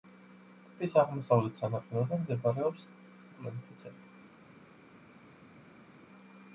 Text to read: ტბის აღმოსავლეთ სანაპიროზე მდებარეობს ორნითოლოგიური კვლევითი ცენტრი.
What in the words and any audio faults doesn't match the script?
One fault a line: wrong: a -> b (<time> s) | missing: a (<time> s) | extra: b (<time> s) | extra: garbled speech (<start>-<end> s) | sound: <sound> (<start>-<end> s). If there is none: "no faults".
missing: ორნითოლოგიური (2.9 s)